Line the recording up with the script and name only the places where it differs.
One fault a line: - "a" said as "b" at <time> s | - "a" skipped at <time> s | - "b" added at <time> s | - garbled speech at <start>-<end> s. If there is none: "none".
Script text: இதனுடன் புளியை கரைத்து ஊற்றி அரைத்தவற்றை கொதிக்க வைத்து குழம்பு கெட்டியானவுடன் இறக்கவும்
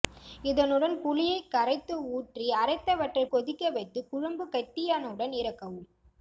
none